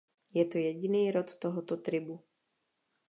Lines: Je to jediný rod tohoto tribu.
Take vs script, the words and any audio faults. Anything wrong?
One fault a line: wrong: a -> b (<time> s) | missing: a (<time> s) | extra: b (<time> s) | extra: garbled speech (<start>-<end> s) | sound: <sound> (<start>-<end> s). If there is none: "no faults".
no faults